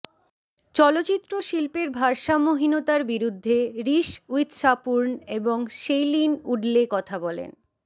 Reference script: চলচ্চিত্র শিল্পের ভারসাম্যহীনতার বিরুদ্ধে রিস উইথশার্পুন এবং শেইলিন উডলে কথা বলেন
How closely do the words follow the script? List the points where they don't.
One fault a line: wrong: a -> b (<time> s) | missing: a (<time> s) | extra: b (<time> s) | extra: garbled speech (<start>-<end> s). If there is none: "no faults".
no faults